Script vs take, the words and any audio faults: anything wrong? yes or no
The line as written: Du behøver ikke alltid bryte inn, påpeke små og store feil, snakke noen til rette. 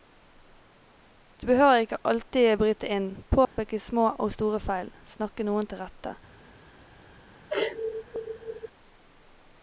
yes